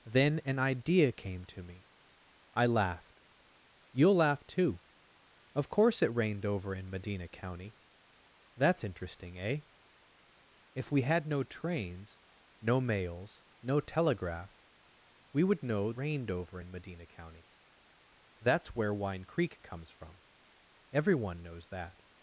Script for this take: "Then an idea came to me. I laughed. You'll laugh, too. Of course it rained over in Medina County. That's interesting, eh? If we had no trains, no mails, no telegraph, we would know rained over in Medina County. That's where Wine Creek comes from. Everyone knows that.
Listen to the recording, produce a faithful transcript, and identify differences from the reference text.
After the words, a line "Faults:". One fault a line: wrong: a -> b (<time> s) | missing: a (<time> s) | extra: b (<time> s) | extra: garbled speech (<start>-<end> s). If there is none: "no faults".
"Then an idea came to me. I laughed. You'll laugh, too. Of course it rained over in Medina County. That's interesting, eh? If we had no trains, no mails, no telegraph, we would know rained over in Medina County. That's where Wine Creek comes from. Everyone knows that.
Faults:
no faults